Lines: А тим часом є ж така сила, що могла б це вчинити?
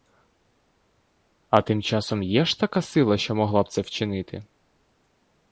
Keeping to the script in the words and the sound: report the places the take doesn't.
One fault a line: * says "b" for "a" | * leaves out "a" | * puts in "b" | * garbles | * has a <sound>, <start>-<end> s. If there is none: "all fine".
all fine